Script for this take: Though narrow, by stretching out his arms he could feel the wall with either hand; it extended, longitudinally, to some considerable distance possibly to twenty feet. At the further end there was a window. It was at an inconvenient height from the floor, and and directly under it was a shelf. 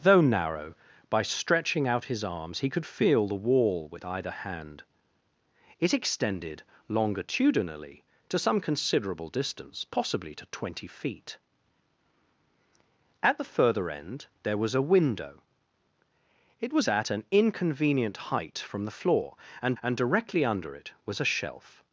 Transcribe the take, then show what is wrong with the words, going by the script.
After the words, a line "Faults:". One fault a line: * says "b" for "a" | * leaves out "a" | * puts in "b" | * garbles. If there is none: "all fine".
Though narrow, by stretching out his arms he could feel the wall with either hand; it extended, longitudinally, to some considerable distance possibly to twenty feet. At the further end there was a window. It was at an inconvenient height from the floor, and and directly under it was a shelf.
Faults:
all fine